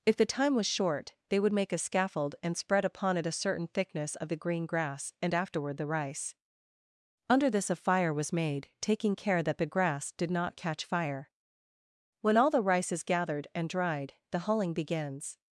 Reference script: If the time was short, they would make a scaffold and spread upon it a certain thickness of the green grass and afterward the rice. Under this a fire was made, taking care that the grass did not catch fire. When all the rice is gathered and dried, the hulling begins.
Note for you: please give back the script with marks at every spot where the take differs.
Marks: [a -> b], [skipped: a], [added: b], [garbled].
If the time was short, they would make a scaffold and spread upon it a certain thickness of the green grass and afterward the rice. Under this a fire was made, taking care that the grass did not catch fire. When all the rice is gathered and dried, the hulling begins.